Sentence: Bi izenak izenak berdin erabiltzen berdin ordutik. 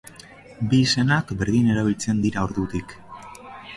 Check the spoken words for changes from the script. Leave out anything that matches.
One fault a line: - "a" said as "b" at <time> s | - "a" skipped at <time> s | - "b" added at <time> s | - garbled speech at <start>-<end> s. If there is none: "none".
- "izenak" skipped at 1.3 s
- "berdin" said as "dira" at 2.3 s